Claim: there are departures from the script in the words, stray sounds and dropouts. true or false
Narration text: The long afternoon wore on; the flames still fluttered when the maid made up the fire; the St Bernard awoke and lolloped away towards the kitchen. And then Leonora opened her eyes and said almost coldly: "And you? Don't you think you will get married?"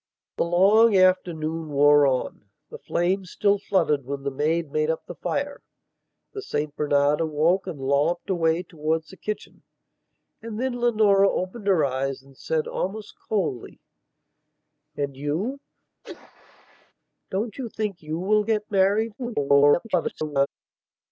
true